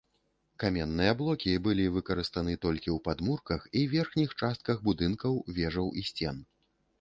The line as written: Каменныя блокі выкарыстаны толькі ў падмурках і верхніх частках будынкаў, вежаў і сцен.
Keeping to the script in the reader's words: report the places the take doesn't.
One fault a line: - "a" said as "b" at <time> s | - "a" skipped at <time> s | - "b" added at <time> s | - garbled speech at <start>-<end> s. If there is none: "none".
- "былі" added at 1.7 s